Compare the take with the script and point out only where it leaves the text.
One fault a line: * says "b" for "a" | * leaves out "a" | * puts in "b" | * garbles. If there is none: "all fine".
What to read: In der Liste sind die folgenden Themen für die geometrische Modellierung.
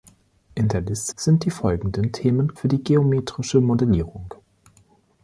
all fine